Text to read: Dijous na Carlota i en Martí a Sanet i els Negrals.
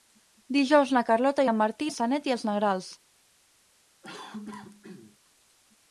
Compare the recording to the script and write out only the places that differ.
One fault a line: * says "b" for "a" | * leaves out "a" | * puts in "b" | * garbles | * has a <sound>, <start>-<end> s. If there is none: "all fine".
* has a cough, 4.0-5.2 s